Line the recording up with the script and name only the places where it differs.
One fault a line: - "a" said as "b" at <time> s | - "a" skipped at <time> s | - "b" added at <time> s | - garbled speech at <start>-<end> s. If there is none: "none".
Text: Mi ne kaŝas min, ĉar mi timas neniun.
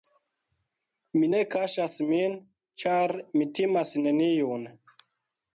none